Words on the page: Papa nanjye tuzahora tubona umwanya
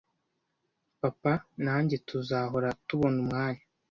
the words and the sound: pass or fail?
pass